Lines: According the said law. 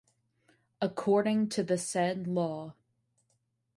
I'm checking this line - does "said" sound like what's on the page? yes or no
yes